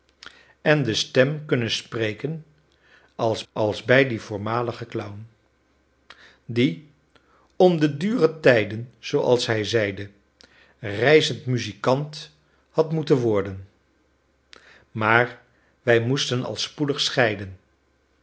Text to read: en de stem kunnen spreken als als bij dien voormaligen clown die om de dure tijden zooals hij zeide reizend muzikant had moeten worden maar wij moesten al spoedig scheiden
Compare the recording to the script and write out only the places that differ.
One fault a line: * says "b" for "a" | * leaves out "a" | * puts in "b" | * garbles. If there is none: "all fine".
all fine